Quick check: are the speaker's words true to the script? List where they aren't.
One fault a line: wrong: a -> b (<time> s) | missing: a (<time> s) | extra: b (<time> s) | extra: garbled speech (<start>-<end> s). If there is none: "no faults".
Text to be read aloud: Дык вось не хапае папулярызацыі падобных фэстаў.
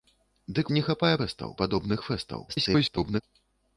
missing: вось (0.7 s)
wrong: папулярызацыі -> фэстаў (1.2 s)
extra: garbled speech (2.5-3.2 s)